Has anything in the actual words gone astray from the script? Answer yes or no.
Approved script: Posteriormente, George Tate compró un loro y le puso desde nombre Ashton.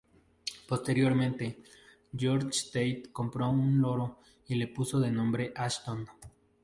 yes